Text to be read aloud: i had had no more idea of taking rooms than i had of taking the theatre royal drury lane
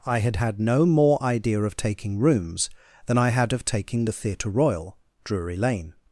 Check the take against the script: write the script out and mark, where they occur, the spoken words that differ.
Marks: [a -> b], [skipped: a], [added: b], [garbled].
i had had no more idea of taking rooms than i had of taking the theatre royal drury lane